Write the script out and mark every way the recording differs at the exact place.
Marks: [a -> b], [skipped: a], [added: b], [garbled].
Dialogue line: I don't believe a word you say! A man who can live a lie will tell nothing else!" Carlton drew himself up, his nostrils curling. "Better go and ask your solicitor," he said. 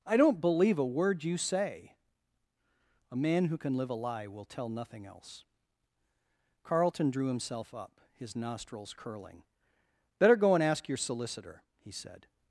I don't believe a word you say! A man who can live a lie will tell nothing else!" Carlton drew himself up, his nostrils curling. "Better go and ask your solicitor," he said.